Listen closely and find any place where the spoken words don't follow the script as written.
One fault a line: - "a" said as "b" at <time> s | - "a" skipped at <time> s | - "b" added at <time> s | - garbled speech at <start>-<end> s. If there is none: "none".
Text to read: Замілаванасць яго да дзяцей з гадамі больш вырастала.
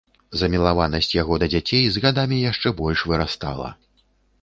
- "яшчэ" added at 2.5 s